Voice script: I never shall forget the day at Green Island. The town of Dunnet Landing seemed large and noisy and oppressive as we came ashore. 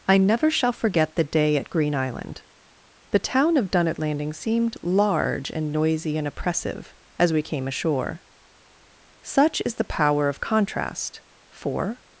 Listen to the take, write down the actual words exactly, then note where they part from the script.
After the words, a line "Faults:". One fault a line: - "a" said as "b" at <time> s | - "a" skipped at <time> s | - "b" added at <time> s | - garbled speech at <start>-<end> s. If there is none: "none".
I never shall forget the day at Green Island. The town of Dunnet Landing seemed large and noisy and oppressive as we came ashore. Such is the power of contrast; for
Faults:
- "Such is the power of contrast for" added at 9.2 s